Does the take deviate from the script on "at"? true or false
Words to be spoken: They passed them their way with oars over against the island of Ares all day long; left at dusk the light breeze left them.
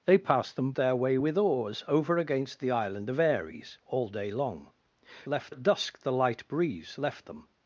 false